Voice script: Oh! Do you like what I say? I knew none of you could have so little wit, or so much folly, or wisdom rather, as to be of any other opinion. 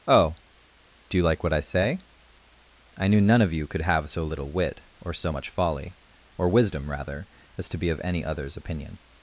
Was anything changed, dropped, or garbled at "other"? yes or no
yes